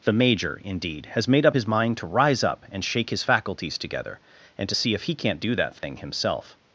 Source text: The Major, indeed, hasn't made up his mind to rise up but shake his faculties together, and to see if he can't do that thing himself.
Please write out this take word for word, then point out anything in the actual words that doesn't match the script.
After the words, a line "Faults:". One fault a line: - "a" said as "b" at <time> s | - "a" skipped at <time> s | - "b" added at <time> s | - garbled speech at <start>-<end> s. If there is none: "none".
The Major, indeed, has made up his mind to rise up and shake his faculties together, and to see if he can't do that thing himself.
Faults:
- "hasn't" said as "has" at 1.1 s
- "but" said as "and" at 2.7 s